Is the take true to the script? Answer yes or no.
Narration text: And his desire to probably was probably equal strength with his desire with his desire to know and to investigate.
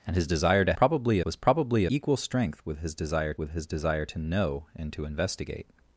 yes